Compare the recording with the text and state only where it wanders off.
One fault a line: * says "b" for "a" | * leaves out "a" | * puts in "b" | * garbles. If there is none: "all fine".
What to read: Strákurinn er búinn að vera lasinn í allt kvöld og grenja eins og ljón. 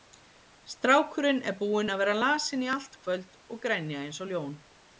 all fine